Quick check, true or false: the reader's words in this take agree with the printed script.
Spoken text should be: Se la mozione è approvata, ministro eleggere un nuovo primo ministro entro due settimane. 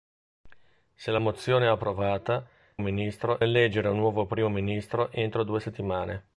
true